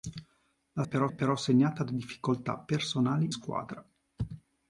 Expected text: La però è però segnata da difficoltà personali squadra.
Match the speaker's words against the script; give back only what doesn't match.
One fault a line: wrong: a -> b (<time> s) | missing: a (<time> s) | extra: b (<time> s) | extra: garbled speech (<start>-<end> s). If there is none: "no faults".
no faults